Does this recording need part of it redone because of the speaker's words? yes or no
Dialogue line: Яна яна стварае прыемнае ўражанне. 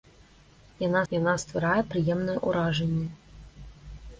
no